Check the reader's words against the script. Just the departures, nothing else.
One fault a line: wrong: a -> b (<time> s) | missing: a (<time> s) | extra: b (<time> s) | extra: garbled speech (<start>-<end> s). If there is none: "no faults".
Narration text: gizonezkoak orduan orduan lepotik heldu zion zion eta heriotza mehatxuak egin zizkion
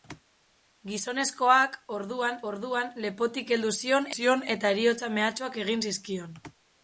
no faults